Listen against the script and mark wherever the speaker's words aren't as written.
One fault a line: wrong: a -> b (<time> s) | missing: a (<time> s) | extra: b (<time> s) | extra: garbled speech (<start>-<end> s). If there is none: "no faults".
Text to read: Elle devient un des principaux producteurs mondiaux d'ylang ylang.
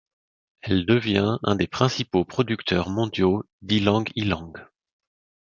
no faults